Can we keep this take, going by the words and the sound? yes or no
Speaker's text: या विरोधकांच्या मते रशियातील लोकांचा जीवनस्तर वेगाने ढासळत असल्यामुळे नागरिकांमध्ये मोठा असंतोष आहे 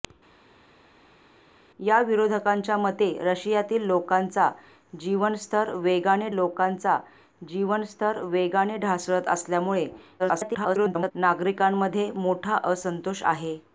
no